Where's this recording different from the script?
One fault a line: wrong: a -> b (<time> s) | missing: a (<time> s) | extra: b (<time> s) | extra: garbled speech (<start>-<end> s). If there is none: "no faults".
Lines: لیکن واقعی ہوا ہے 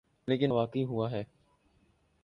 no faults